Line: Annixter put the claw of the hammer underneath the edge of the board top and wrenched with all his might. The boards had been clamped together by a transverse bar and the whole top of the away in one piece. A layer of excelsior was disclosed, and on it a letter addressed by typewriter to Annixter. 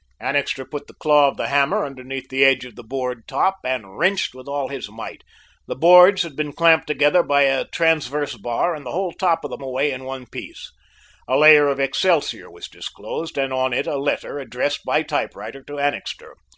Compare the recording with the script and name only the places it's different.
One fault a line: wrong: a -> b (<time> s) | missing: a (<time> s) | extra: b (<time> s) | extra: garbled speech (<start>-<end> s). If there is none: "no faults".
no faults